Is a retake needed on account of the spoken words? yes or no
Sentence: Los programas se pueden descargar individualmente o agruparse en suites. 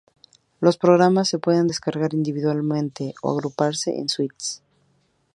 no